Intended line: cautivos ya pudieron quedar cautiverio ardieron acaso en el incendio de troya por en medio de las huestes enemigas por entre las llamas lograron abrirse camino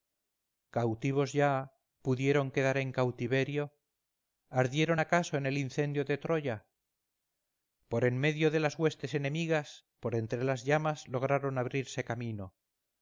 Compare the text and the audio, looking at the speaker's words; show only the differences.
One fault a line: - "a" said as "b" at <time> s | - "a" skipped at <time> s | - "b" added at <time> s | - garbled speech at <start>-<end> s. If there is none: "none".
- "en" added at 2.8 s